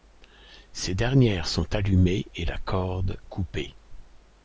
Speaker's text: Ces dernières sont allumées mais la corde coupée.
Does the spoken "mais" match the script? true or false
false